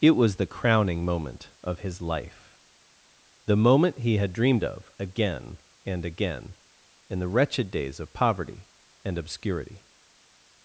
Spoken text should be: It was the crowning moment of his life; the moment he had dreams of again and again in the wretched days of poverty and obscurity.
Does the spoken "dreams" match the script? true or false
false